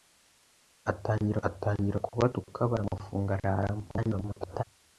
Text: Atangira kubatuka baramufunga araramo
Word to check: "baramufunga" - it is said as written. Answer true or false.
true